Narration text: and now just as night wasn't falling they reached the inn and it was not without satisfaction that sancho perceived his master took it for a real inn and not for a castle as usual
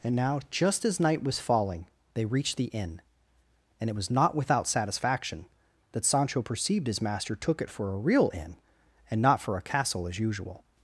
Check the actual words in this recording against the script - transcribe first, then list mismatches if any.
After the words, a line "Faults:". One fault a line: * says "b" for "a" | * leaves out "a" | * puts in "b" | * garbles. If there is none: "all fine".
and now just as night was falling they reached the inn and it was not without satisfaction that sancho perceived his master took it for a real inn and not for a castle as usual
Faults:
* says "was" for "wasn't"